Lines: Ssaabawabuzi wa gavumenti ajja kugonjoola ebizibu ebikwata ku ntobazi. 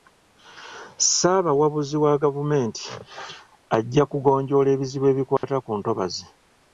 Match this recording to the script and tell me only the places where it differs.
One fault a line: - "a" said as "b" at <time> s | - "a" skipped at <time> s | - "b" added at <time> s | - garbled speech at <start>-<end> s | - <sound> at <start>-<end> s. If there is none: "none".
- dropout at 5.4-5.4 s